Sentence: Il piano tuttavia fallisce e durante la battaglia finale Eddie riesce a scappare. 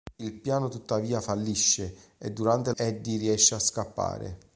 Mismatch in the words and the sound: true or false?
true